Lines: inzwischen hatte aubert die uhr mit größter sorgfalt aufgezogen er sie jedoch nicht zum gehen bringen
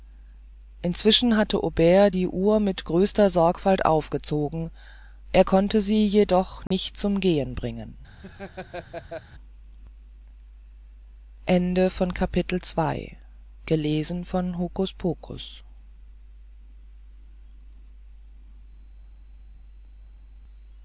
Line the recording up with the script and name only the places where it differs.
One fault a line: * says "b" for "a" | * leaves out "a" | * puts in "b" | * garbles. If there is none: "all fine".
* puts in "konnte"